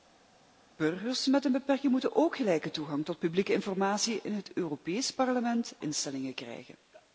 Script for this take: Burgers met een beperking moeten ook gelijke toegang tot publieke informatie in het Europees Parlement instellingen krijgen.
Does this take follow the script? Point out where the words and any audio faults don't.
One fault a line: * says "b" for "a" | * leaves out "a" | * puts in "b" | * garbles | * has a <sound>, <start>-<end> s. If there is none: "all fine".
all fine